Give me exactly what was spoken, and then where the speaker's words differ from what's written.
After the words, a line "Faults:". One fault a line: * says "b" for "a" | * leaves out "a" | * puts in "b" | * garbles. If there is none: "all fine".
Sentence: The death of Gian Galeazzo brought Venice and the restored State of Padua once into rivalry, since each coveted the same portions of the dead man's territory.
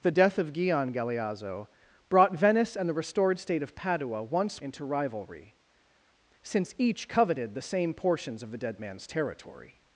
The death of Gian Galeazzo brought Venice and the restored State of Padua once into rivalry, since each coveted the same portions of the dead man's territory.
Faults:
all fine